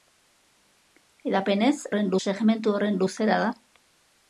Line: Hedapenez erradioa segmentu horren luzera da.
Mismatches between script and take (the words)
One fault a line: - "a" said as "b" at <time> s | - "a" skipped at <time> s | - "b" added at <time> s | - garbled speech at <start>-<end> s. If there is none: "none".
- "erradioa" said as "horren" at 1.9 s